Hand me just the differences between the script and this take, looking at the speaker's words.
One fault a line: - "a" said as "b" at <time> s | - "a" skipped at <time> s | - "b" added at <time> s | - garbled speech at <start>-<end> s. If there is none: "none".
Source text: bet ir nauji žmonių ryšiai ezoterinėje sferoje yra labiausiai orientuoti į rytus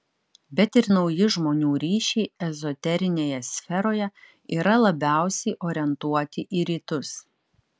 none